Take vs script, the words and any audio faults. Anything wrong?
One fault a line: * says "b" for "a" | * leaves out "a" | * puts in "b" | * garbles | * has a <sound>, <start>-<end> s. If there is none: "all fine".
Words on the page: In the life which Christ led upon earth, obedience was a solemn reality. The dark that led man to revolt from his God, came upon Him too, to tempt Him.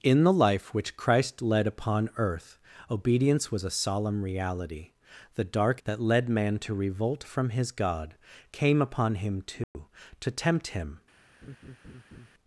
* has a dropout, 9.6-9.8 s
* has a laugh, 11.4-12.3 s